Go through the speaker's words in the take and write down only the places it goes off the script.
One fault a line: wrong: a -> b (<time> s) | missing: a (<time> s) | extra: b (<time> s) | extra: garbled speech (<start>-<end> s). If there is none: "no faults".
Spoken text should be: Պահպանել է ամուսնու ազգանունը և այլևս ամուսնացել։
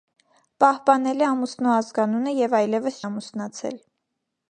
no faults